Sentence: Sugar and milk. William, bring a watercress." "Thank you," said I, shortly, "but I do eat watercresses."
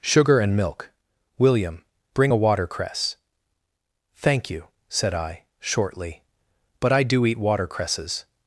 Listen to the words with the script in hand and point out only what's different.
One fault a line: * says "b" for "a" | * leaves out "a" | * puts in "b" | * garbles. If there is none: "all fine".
all fine